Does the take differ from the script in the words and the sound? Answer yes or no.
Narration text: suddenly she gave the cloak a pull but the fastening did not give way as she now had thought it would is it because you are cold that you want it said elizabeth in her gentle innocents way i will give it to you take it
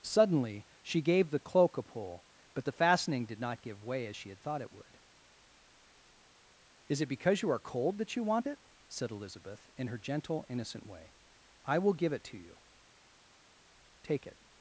yes